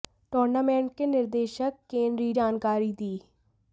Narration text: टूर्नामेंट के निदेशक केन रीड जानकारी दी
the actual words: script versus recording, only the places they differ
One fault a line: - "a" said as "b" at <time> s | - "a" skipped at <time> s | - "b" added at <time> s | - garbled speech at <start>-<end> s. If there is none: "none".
none